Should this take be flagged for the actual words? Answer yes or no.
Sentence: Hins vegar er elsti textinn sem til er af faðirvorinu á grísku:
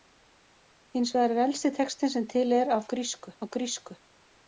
yes